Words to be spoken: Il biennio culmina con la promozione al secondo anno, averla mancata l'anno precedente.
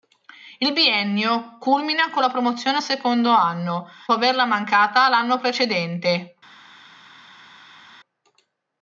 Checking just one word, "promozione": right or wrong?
right